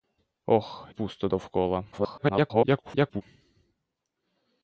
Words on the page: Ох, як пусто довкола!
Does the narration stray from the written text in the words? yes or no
yes